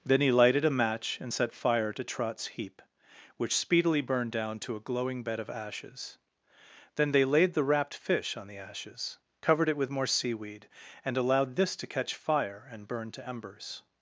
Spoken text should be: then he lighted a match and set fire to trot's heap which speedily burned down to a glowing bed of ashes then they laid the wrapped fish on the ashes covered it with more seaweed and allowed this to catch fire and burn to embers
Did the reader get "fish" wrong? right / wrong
right